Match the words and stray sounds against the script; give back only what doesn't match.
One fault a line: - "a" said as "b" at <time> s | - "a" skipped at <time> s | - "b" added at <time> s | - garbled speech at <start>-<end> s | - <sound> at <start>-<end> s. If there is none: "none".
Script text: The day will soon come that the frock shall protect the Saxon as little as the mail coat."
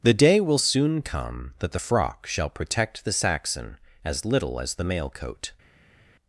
none